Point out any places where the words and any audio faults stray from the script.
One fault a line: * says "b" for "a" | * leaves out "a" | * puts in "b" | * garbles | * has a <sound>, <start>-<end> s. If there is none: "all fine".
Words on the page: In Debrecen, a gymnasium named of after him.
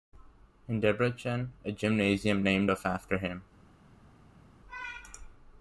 all fine